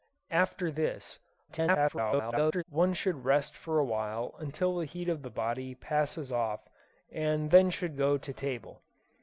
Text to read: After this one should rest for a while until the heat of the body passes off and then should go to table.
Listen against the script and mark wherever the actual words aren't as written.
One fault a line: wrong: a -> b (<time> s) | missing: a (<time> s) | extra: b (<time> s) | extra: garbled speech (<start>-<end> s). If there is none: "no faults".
extra: garbled speech (1.5-2.6 s)